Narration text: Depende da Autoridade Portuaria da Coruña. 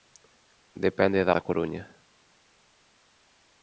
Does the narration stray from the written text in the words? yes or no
yes